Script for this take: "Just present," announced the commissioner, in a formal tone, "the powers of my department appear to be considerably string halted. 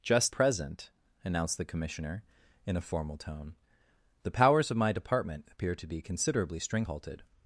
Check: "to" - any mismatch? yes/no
no